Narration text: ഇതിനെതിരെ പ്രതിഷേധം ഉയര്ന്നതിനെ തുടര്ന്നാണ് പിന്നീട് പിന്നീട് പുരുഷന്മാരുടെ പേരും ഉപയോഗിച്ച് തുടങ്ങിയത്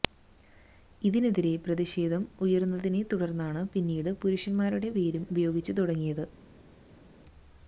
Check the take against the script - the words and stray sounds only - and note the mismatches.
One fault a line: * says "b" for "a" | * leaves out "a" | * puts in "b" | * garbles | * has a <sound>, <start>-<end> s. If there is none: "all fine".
* leaves out "പിന്നീട്"